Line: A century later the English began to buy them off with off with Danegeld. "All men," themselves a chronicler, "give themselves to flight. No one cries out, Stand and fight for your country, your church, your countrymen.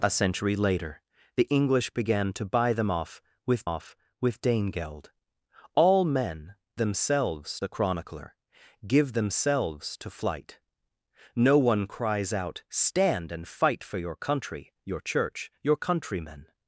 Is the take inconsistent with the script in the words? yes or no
no